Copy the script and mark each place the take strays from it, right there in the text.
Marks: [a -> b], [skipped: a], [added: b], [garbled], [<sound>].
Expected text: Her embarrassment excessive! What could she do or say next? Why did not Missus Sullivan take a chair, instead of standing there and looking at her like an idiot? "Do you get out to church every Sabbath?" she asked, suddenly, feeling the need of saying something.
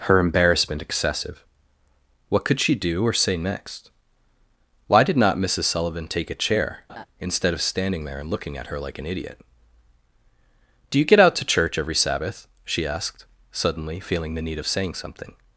Her embarrassment excessive! What could she do or say next? Why did not Missus Sullivan take a chair, [laugh] instead of standing there and looking at her like an idiot? "Do you get out to church every Sabbath?" she asked, suddenly, feeling the need of saying something.